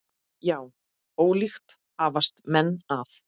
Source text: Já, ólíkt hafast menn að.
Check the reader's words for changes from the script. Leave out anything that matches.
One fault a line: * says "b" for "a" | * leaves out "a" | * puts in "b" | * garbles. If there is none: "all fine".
all fine